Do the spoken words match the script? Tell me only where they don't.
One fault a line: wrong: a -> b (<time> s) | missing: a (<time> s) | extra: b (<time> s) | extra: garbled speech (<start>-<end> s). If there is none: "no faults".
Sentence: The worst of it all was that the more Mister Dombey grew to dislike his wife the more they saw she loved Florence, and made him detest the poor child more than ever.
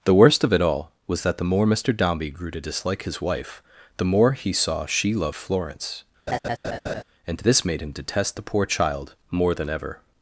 wrong: they -> he (4.3 s)
extra: this (7.4 s)